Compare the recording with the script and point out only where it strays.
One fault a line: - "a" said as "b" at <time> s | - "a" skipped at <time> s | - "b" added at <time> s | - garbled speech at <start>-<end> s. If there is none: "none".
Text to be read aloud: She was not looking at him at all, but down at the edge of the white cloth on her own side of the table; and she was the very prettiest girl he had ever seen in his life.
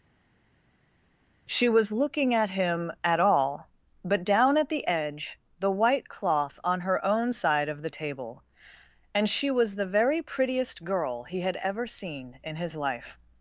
- "not" skipped at 1.9 s
- "of" skipped at 5.4 s